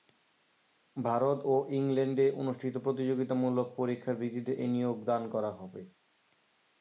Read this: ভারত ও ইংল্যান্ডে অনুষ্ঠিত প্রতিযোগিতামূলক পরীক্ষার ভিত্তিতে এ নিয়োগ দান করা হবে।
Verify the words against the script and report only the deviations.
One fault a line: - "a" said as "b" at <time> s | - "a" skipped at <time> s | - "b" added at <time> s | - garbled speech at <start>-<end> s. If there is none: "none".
none